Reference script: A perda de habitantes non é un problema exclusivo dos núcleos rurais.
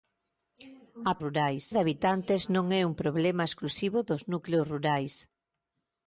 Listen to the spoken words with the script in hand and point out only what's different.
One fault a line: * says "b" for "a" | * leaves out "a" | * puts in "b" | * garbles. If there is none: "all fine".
* says "rurais" for "perda"